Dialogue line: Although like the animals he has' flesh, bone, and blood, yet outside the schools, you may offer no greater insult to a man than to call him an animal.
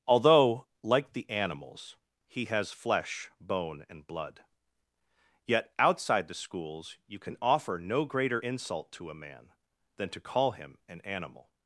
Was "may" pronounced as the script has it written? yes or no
no